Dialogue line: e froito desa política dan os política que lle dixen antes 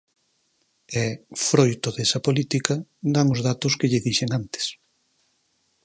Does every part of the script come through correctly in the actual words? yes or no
no